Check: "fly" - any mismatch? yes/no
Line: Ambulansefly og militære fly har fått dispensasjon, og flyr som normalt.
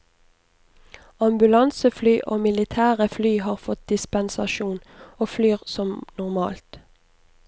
no